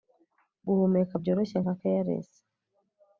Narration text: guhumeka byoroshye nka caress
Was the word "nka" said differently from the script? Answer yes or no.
no